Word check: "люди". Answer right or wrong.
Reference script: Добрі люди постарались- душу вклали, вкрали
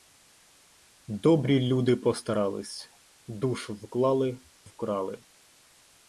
right